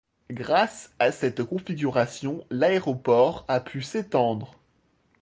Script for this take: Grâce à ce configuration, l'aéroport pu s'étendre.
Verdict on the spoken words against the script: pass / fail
fail